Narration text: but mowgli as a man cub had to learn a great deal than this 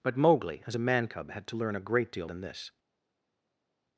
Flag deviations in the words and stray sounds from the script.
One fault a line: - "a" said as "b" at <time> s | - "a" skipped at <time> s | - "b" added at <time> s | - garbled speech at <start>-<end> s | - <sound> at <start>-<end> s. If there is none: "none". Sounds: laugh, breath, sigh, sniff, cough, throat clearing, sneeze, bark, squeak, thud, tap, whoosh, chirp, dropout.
none